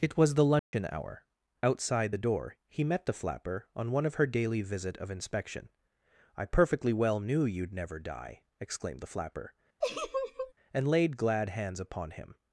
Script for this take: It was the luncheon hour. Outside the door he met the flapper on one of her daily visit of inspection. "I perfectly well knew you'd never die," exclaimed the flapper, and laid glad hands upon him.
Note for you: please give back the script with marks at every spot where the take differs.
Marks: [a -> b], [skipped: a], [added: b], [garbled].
It was the luncheon hour. Outside the door he met the flapper on one of her daily visit of inspection. "I perfectly well knew you'd never die," exclaimed the flapper, and laid glad hands upon him.